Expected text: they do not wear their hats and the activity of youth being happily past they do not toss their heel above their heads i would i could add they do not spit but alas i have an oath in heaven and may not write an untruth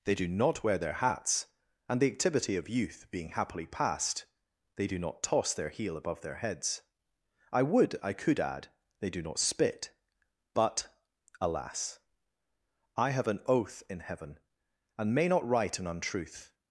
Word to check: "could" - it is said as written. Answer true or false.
true